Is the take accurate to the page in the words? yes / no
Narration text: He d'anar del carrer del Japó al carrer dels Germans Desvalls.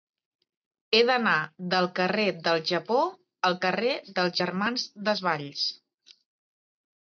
yes